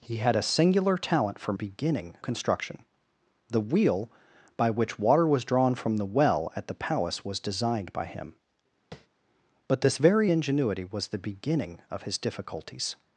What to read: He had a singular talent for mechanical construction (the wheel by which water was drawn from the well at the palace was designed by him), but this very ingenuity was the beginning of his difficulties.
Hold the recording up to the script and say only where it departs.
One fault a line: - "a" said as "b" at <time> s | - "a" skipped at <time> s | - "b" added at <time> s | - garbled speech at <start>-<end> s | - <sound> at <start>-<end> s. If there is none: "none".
- "mechanical" said as "beginning" at 1.5 s
- tap at 8.9-9.1 s